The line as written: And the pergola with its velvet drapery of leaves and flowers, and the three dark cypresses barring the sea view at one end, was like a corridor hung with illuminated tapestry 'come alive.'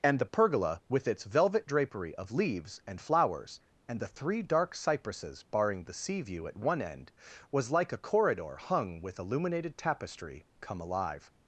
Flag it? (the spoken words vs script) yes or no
no